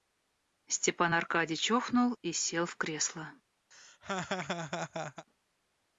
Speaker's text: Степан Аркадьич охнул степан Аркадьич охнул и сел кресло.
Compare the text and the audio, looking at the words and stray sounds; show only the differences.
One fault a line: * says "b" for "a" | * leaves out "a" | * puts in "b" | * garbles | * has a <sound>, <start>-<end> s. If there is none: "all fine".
* leaves out "степан Аркадьич охнул"
* puts in "в"
* has a laugh, 3.7-5.3 s